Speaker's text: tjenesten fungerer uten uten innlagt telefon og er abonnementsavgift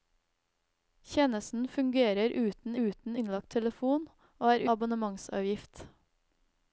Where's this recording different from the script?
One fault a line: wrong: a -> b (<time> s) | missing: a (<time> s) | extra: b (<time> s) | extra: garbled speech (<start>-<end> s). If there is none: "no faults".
no faults